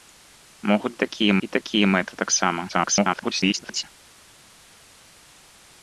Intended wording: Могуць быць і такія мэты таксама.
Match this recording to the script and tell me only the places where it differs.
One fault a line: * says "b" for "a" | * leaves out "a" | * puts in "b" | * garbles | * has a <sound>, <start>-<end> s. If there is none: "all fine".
* says "такія" for "быць"
* garbles